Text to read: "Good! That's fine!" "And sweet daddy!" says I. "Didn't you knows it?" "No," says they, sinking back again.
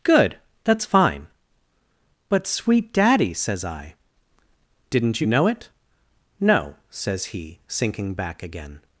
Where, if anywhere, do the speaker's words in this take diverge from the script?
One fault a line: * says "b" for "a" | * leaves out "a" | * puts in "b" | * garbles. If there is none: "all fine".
* says "But" for "And"
* says "know" for "knows"
* says "he" for "they"